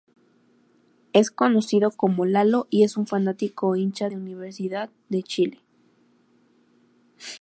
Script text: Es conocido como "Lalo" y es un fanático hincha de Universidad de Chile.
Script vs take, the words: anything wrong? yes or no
no